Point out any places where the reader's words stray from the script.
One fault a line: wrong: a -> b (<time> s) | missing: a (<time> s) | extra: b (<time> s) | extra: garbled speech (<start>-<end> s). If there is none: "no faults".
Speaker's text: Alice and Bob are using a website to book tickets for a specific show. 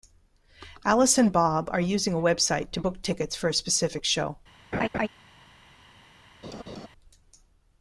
no faults